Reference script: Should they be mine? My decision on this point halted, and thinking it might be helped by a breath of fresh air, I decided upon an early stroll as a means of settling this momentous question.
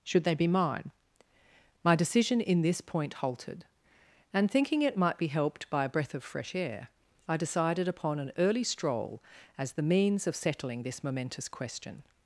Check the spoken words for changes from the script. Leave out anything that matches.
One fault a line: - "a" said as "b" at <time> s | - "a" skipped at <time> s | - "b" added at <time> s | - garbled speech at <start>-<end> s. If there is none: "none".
- "on" said as "in" at 2.4 s
- "a" said as "the" at 9.7 s